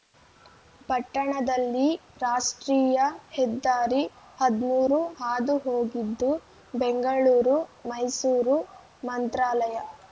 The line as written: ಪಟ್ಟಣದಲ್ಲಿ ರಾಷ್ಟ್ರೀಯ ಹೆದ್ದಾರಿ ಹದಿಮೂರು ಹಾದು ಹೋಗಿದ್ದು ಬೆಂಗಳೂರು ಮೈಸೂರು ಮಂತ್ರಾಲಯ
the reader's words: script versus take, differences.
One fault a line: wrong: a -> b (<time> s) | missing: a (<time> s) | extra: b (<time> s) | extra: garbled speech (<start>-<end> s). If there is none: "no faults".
no faults